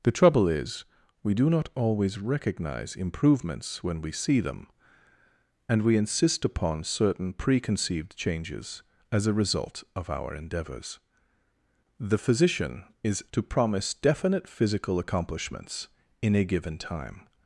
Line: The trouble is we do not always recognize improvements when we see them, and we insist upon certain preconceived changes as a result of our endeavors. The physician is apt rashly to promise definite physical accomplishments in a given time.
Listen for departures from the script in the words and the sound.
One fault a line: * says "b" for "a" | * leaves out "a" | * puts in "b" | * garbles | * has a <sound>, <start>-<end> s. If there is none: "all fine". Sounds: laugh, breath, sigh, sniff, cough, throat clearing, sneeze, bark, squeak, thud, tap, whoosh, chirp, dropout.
* leaves out "apt rashly"